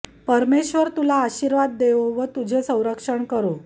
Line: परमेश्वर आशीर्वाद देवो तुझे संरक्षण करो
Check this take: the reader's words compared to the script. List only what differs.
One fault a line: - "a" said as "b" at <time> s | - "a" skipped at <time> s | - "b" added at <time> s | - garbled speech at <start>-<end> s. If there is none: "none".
- "तुला" added at 0.9 s
- "व" added at 2.1 s